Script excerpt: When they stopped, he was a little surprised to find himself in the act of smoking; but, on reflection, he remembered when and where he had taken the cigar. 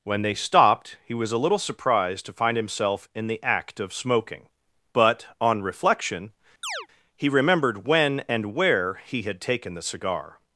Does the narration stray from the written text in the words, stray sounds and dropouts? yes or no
yes